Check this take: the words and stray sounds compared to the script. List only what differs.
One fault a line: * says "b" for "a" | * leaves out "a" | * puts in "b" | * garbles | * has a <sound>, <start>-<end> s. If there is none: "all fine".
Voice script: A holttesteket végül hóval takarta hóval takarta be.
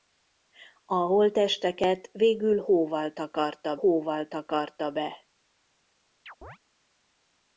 * has a chirp, 6.3-6.6 s